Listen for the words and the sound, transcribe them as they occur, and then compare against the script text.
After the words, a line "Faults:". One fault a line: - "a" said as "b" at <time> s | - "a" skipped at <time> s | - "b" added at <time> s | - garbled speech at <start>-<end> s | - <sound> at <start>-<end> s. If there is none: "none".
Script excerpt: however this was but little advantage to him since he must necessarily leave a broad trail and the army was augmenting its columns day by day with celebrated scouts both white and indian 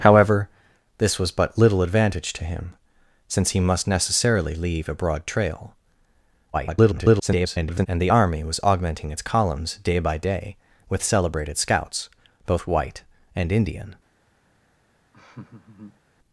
however this was but little advantage to him since he must necessarily leave a broad trail [garbled] and the army was augmenting its columns day by day with celebrated scouts both white and indian
Faults:
- garbled speech at 6.5-7.9 s
- laugh at 15.1-16.0 s